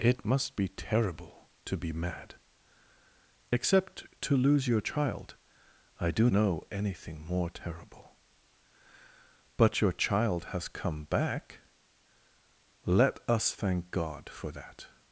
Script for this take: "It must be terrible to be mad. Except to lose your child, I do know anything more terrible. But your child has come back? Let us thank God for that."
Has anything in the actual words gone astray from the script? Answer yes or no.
no